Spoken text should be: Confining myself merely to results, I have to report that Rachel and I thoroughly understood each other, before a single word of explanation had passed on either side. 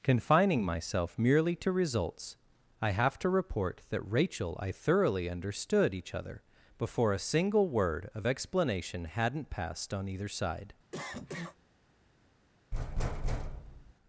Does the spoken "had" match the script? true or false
false